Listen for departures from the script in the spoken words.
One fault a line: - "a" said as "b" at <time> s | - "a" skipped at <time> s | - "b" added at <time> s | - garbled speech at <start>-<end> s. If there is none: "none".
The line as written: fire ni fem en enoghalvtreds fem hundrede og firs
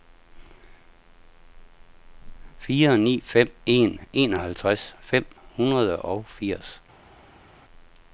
none